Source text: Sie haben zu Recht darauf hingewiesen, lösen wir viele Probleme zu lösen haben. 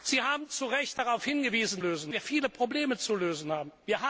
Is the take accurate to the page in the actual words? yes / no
yes